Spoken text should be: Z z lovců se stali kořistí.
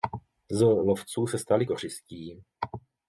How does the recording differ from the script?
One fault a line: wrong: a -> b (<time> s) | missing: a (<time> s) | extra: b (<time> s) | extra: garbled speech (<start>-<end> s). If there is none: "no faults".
missing: z (0.6 s)